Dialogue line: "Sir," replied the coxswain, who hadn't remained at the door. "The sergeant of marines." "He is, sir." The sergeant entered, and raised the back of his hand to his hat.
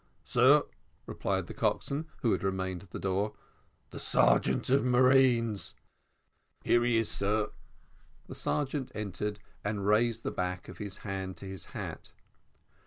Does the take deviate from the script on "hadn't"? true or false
true